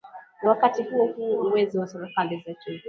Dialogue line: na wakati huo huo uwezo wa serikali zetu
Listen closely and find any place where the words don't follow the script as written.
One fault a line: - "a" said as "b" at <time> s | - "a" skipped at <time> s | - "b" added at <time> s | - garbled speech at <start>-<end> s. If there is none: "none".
none